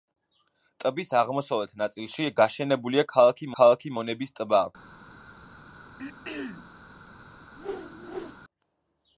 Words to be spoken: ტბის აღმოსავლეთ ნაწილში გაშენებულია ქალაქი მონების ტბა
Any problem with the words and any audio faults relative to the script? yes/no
yes